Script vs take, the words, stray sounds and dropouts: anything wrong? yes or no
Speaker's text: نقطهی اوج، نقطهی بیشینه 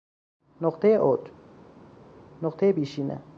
no